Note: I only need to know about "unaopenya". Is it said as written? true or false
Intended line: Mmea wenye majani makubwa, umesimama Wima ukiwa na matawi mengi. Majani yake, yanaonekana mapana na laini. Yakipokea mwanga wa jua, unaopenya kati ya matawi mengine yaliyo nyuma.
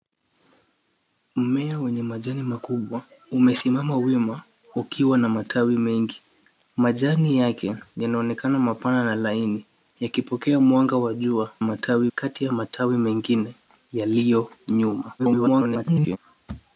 false